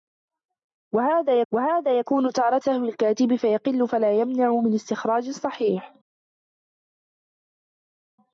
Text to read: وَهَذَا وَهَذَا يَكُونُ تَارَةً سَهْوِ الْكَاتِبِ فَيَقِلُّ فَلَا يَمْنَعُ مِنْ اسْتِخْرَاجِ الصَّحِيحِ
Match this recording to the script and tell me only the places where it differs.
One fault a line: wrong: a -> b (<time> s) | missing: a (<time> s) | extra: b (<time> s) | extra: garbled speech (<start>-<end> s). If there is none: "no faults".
no faults